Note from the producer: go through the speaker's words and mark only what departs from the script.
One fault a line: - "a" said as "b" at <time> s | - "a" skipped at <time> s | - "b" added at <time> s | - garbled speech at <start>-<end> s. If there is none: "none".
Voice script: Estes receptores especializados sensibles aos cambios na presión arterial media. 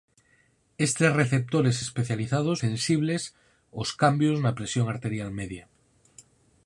none